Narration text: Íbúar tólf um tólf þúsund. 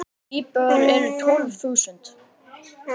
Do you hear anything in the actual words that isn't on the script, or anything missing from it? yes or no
yes